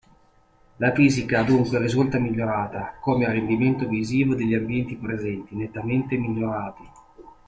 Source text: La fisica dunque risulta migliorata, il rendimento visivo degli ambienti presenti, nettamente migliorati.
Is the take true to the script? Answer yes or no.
no